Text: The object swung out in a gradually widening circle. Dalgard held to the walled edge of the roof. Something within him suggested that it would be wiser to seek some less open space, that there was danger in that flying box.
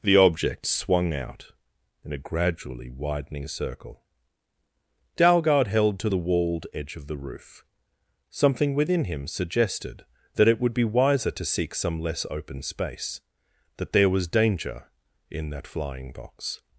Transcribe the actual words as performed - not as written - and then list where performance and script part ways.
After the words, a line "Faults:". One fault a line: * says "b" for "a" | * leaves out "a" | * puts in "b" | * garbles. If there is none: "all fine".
The object swung out in a gradually widening circle. Dalgard held to the walled edge of the roof. Something within him suggested that it would be wiser to seek some less open space, that there was danger in that flying box.
Faults:
all fine